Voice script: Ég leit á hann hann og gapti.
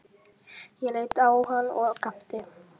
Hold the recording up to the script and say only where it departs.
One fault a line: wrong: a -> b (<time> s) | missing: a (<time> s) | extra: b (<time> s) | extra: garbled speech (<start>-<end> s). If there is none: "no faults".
missing: hann (1.7 s)